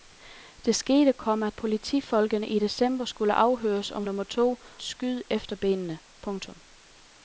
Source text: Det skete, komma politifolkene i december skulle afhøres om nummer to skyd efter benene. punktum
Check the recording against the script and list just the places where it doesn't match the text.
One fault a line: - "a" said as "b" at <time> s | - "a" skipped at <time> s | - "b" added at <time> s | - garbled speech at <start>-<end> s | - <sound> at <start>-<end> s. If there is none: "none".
none